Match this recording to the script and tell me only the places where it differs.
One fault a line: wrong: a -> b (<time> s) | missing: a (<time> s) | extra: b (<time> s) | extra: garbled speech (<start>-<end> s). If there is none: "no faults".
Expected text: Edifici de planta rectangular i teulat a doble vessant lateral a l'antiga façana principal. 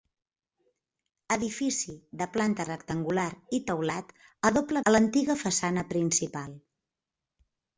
missing: vessant lateral (4.8 s)